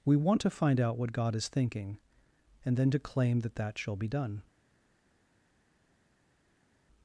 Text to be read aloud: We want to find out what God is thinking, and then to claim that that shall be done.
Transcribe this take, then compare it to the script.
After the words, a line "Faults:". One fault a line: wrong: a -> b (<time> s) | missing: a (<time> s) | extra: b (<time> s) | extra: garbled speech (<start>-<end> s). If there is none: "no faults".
We want to find out what God is thinking, and then to claim that that shall be done.
Faults:
no faults